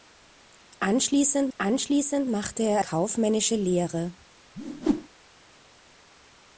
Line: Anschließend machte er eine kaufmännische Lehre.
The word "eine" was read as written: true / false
false